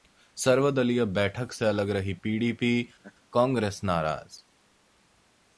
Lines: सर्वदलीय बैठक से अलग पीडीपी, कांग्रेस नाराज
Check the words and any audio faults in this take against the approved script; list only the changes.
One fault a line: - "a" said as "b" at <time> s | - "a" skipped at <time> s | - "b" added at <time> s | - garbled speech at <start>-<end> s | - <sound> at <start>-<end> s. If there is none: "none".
- "रही" added at 1.9 s
- laugh at 3.0-3.1 s